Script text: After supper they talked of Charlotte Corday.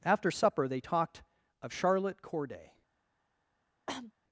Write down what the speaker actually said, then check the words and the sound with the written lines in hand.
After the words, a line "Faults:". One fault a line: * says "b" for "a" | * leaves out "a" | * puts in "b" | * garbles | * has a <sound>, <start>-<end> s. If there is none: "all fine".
After supper they talked of Charlotte Corday.
Faults:
* has a cough, 3.9-4.1 s